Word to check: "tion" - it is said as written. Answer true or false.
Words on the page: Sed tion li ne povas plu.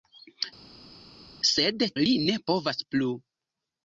false